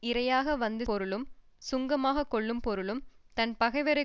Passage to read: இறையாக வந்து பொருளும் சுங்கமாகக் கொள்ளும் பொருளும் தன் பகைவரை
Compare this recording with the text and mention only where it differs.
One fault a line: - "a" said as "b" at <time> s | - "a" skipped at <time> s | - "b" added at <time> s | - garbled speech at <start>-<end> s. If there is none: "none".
none